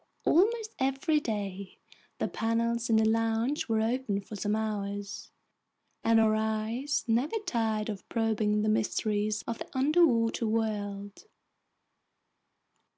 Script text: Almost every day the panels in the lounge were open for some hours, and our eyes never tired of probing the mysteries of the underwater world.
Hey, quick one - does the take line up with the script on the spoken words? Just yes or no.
yes